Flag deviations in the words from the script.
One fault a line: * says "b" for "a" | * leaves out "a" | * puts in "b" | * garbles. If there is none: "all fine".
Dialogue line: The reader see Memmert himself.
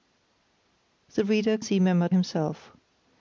all fine